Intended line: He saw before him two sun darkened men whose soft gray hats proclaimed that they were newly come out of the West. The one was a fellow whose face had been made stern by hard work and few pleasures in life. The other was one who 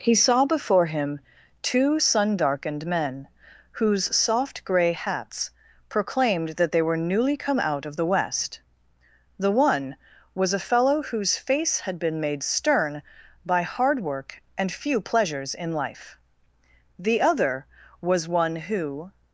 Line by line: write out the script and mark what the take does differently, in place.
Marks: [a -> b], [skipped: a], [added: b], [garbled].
He saw before him two sun darkened men whose soft gray hats proclaimed that they were newly come out of the West. The one was a fellow whose face had been made stern by hard work and few pleasures in life. The other was one who